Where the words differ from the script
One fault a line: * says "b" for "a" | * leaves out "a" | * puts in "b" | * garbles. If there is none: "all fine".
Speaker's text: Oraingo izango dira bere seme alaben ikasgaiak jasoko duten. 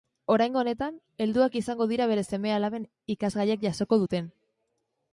* puts in "honetan helduak"